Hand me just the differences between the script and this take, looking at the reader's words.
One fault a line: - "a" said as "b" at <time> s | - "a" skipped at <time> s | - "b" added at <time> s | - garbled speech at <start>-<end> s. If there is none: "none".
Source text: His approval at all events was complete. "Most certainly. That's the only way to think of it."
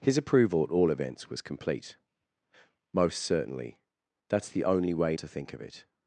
none